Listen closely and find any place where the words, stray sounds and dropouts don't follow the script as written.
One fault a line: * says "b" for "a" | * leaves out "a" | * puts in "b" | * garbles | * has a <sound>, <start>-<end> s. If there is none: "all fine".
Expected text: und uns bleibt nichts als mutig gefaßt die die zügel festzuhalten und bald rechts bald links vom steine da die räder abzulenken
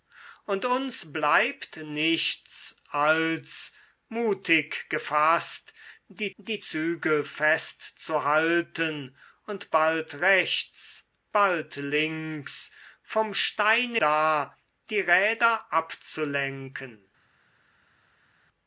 all fine